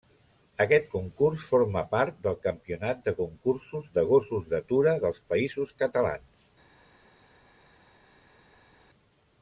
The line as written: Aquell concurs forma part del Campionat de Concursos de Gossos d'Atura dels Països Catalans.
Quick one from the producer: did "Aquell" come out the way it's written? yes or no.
no